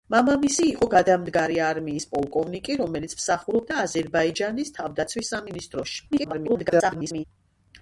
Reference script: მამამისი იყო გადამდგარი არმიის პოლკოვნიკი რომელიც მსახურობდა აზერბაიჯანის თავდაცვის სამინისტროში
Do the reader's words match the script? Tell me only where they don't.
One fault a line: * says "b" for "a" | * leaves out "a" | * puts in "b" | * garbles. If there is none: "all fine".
* garbles